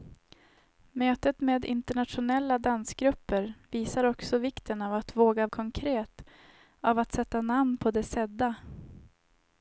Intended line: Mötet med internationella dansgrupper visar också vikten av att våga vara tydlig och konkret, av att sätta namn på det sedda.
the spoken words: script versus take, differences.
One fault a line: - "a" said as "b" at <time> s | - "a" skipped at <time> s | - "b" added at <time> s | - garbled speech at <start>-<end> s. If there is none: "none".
- "vara tydlig och" skipped at 5.5 s